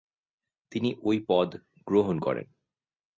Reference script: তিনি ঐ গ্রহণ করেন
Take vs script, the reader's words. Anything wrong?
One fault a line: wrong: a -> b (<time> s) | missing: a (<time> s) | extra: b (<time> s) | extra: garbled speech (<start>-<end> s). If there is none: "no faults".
extra: পদ (1.3 s)